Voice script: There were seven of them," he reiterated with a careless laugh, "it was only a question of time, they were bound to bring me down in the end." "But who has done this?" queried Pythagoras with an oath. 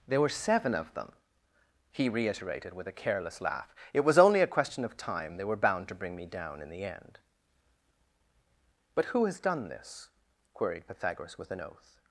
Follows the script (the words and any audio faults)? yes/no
yes